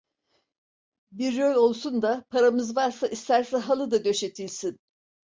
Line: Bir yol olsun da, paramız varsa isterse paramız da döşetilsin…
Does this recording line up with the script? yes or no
no